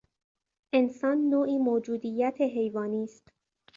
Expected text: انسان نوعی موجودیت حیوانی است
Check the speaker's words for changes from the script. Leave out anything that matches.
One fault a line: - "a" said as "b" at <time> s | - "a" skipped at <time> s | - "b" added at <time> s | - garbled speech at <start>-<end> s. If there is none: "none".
none